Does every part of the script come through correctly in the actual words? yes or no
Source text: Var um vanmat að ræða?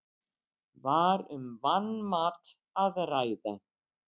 yes